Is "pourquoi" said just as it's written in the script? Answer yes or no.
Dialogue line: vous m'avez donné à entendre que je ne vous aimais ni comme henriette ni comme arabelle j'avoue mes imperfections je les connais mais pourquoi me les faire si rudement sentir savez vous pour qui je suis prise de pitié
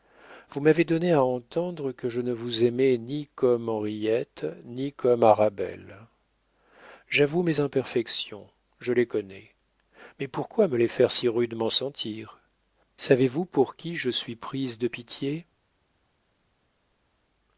yes